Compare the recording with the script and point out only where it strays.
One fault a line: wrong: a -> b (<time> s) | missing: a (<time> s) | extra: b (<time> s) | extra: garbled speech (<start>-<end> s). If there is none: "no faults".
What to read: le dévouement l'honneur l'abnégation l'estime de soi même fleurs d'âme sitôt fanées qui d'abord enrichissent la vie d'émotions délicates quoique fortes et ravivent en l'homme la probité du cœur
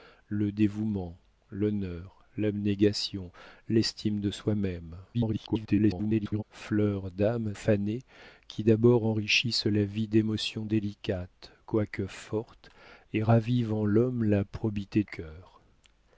extra: garbled speech (5.1-6.4 s)
missing: sitôt (7.5 s)
missing: du (15.0 s)